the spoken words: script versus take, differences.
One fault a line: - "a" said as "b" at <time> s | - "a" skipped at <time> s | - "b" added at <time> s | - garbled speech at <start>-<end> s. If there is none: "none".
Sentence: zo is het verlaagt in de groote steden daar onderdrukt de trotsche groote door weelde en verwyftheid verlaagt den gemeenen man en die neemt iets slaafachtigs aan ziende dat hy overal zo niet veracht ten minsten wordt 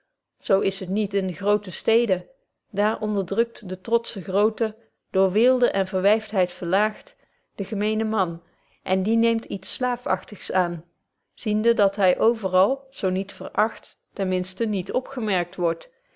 - "verlaagt" said as "niet" at 0.9 s
- "niet opgemerkt" added at 14.7 s